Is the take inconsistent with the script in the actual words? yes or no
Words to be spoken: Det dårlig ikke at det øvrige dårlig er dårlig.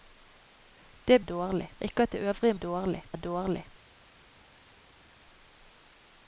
no